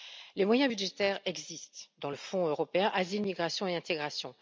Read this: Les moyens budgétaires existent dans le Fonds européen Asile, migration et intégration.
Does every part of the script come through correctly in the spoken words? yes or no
yes